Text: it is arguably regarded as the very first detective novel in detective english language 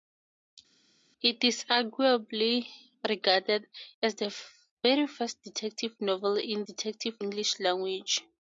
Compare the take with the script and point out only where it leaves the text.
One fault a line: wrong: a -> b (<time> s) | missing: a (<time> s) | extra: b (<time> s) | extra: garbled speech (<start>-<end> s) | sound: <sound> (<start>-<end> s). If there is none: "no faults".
no faults